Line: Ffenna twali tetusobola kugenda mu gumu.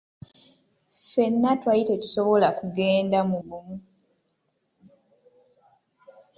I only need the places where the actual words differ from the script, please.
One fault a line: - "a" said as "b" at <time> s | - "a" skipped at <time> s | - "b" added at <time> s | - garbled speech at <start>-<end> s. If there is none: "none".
none